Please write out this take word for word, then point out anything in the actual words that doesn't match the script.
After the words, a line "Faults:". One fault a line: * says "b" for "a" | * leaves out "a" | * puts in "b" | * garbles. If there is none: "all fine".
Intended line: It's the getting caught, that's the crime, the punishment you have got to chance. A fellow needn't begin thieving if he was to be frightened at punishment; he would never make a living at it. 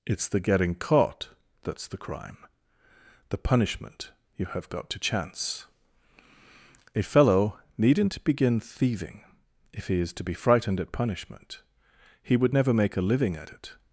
It's the getting caught, that's the crime, the punishment you have got to chance. A fellow needn't begin thieving if he is to be frightened at punishment; he would never make a living at it.
Faults:
* says "is" for "was"